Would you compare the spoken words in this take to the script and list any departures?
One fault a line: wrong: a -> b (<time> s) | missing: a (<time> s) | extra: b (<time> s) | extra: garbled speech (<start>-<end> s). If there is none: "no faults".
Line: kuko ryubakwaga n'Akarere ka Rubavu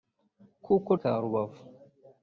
missing: ryubakwaga n'Akarere (0.9 s)